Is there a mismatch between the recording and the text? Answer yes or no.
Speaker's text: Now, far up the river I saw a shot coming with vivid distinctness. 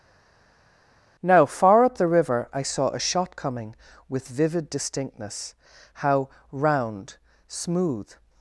yes